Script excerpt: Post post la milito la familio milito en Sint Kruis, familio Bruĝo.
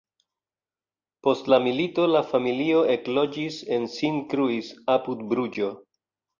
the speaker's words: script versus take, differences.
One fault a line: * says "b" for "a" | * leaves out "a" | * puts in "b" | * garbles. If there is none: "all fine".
* leaves out "post"
* says "ekloĝis" for "milito"
* says "apud" for "familio"